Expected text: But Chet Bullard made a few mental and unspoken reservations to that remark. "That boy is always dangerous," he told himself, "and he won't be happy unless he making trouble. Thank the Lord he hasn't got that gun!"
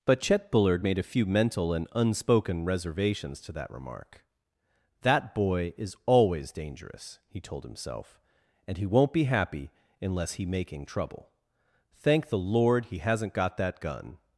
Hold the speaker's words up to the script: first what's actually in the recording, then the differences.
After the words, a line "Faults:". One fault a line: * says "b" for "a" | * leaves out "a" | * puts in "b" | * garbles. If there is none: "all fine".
But Chet Bullard made a few mental and unspoken reservations to that remark. "That boy is always dangerous," he told himself, "and he won't be happy unless he making trouble. Thank the Lord he hasn't got that gun!"
Faults:
all fine